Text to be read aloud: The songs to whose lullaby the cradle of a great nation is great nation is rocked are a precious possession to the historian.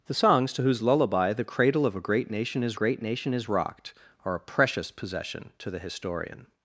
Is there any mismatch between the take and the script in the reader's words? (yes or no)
no